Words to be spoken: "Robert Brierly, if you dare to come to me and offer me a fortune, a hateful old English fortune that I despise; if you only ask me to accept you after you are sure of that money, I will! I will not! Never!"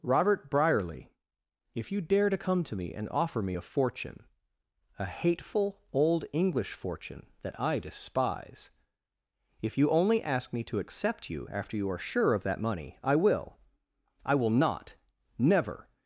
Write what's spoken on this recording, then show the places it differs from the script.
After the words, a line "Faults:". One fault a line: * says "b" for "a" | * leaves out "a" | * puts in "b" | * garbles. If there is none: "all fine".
"Robert Brierly, if you dare to come to me and offer me a fortune, a hateful old English fortune that I despise; if you only ask me to accept you after you are sure of that money, I will! I will not! Never!"
Faults:
all fine